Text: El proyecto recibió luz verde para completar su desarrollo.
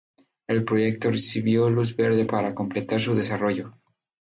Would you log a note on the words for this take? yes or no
no